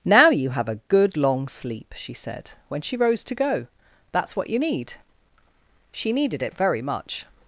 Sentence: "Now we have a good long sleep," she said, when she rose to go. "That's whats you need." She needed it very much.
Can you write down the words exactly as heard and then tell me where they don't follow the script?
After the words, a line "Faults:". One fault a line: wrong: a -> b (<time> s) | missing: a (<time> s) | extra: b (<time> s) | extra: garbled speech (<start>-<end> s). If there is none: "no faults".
"Now you have a good long sleep," she said, when she rose to go. "That's what you need." She needed it very much.
Faults:
wrong: we -> you (0.3 s)
wrong: whats -> what (4.4 s)